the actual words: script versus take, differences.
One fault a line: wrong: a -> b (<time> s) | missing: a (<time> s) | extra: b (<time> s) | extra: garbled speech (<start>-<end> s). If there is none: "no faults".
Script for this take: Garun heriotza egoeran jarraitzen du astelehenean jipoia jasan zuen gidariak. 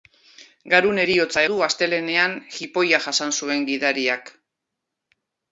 missing: egoeran jarraitzen (1.4 s)